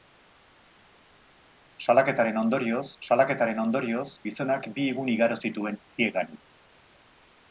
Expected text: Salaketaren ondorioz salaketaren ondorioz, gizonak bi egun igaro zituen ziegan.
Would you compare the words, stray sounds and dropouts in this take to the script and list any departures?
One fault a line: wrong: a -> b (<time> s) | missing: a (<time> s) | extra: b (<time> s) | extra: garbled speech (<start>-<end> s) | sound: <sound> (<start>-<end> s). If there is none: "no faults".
no faults